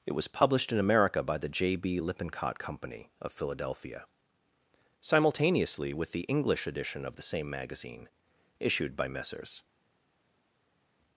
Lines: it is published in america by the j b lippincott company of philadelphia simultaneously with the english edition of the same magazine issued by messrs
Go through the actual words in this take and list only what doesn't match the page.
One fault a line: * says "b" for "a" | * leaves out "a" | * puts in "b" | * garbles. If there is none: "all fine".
* says "was" for "is"